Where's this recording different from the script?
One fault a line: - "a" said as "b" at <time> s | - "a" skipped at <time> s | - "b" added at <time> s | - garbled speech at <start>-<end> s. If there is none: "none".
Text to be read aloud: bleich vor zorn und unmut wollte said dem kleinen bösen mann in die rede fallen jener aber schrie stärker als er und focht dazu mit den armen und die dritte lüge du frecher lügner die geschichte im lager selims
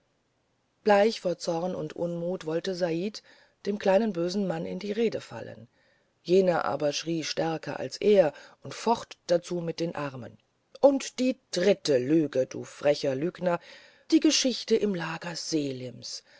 none